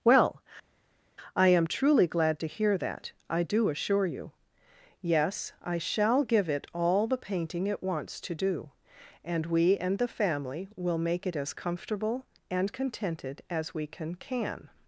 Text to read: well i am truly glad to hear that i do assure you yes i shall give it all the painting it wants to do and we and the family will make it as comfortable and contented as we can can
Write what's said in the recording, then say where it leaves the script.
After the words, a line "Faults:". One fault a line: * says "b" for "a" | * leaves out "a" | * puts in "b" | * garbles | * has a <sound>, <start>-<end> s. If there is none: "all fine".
well i am truly glad to hear that i do assure you yes i shall give it all the painting it wants to do and we and the family will make it as comfortable and contented as we can can
Faults:
all fine